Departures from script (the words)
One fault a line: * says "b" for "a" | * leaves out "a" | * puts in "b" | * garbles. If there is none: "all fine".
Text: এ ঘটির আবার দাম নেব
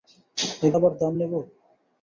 * leaves out "ঘটির"